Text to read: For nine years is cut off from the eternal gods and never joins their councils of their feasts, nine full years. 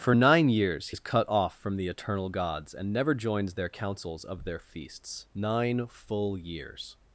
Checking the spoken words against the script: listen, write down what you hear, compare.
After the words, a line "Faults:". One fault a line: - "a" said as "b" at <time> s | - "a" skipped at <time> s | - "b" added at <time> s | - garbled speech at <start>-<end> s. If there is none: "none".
For nine years is cut off from the eternal gods and never joins their councils of their feasts, nine full years.
Faults:
none